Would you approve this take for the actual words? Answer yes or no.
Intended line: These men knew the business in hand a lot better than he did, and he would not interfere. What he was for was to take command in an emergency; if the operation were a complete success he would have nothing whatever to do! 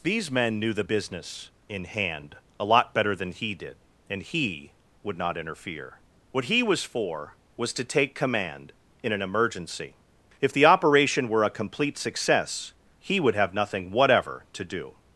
yes